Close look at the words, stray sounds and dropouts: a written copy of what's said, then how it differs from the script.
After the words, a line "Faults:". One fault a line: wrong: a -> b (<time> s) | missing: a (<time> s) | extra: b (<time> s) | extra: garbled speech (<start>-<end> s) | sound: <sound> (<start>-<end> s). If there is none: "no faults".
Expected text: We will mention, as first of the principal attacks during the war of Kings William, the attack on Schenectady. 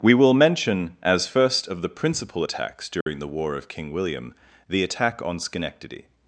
We will mention, as first of the principal attacks during the war of King William, the attack on Schenectady.
Faults:
sound: dropout (3.0-3.1 s)
wrong: Kings -> King (3.7 s)